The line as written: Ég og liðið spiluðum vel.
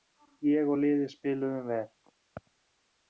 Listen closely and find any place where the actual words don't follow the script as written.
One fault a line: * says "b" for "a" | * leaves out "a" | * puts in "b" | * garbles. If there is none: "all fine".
all fine